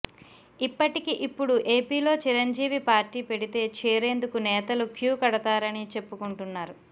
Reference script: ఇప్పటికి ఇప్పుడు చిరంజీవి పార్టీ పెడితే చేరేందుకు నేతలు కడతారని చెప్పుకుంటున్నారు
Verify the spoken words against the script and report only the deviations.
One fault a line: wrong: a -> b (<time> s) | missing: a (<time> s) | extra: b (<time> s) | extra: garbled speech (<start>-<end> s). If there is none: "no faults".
extra: ఏపీలో (1.7 s)
extra: క్యూ (5.0 s)